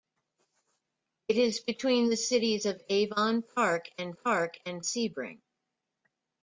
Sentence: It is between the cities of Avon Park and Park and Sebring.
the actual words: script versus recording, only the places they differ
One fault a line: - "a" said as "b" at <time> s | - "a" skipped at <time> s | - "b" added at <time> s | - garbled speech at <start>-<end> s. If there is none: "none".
none